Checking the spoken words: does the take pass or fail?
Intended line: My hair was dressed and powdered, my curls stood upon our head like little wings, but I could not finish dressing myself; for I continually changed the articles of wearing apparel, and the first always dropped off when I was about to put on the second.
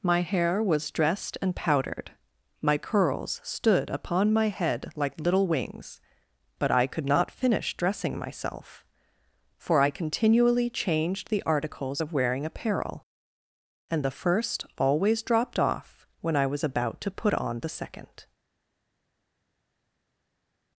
fail